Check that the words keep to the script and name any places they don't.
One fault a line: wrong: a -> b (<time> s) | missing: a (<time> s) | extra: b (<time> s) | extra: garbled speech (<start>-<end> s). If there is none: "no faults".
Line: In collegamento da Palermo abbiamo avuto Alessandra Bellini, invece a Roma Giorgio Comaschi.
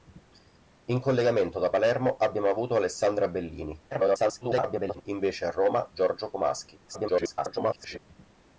extra: garbled speech (3.9-5.0 s)
extra: garbled speech (6.9-8.0 s)